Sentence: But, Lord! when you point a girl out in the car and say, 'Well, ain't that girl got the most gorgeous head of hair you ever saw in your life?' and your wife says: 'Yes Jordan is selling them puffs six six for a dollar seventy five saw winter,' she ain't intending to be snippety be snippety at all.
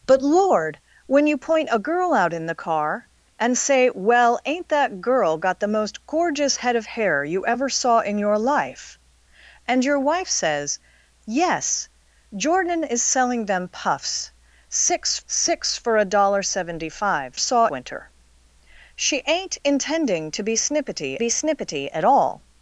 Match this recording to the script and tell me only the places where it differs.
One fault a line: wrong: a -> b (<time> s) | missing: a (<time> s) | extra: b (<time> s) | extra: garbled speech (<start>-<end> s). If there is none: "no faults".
no faults